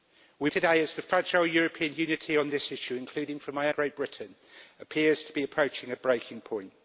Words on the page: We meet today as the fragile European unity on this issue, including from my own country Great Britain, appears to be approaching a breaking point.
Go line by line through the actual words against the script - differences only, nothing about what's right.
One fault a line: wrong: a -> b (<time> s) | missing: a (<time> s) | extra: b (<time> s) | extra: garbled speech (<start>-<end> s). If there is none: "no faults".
missing: meet (0.5 s)
missing: own country (3.7 s)